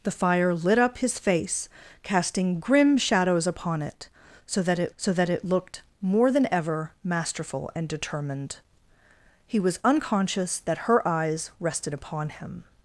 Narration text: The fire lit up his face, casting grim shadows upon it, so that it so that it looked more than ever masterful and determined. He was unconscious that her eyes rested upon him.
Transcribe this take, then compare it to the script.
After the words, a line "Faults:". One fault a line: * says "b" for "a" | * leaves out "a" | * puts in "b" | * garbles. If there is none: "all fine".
The fire lit up his face, casting grim shadows upon it, so that it so that it looked more than ever masterful and determined. He was unconscious that her eyes rested upon him.
Faults:
all fine